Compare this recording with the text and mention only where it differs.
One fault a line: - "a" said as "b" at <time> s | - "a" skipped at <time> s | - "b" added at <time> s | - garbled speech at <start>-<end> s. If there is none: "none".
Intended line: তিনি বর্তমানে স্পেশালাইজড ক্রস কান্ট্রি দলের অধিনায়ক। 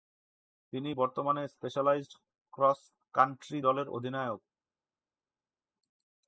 none